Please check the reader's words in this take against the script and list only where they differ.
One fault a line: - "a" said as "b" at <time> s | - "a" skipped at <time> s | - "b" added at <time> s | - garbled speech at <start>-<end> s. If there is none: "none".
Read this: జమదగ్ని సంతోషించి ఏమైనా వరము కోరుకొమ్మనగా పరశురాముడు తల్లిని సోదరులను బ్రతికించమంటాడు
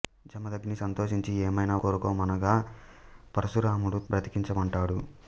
- "వరము" skipped at 1.8 s
- "తల్లిని సోదరులను" skipped at 4.0 s